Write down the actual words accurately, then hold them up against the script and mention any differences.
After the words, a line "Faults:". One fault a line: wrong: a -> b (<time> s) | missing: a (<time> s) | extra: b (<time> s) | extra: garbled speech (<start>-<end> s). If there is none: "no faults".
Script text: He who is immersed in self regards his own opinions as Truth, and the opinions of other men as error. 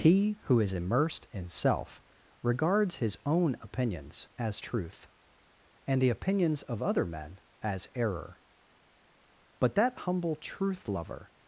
He who is immersed in self regards his own opinions as Truth, and the opinions of other men as error. But that humble Truth lover
Faults:
extra: But that humble Truth lover (9.6 s)